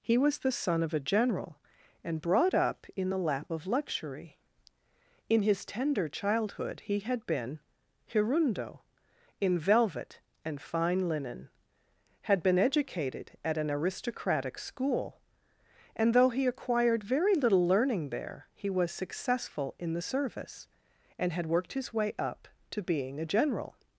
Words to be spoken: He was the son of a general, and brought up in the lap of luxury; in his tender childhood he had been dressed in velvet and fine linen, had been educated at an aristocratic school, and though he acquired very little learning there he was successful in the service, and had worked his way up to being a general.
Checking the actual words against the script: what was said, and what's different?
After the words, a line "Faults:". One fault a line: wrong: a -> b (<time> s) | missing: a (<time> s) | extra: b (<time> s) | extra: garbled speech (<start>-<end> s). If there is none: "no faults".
He was the son of a general, and brought up in the lap of luxury; in his tender childhood he had been hirundo in velvet and fine linen, had been educated at an aristocratic school, and though he acquired very little learning there he was successful in the service, and had worked his way up to being a general.
Faults:
wrong: dressed -> hirundo (8.1 s)